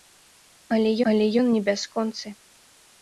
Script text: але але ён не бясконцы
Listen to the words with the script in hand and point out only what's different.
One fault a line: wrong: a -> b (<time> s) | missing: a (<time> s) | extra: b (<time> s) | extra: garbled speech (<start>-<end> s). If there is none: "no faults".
no faults